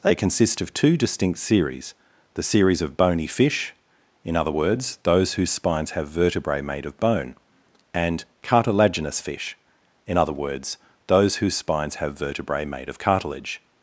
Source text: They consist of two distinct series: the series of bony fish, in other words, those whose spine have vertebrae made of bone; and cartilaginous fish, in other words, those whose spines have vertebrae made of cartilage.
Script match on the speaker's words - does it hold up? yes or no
no